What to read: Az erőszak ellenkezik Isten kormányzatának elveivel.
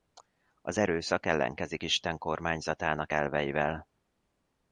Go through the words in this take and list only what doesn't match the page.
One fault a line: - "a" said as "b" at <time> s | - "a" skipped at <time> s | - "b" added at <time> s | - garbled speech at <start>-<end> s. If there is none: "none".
none